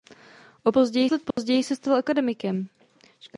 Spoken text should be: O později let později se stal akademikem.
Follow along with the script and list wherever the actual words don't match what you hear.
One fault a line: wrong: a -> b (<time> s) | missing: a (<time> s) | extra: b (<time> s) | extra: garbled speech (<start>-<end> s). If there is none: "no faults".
no faults